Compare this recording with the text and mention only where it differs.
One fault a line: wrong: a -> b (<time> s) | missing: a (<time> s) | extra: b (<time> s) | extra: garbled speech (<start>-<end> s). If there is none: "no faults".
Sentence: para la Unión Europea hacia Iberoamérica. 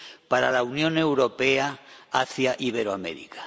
no faults